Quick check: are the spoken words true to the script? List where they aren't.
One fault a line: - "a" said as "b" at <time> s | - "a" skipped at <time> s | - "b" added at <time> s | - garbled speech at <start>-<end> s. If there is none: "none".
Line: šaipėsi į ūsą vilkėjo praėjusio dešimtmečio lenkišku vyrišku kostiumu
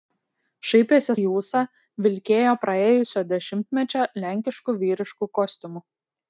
none